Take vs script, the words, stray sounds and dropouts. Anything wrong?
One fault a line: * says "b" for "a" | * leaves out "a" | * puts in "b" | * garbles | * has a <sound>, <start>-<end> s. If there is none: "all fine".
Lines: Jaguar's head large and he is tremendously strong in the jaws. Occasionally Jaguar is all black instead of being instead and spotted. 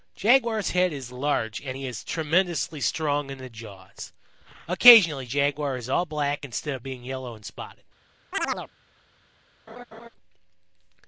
* puts in "is"
* says "yellow" for "instead"
* has a chirp, 8.3-8.7 s
* has a laugh, 9.7-10.1 s